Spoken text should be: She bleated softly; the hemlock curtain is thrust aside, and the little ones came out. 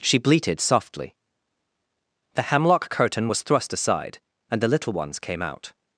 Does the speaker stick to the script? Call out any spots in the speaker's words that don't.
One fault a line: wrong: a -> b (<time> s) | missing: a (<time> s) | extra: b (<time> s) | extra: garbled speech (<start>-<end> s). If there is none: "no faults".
wrong: is -> was (3.3 s)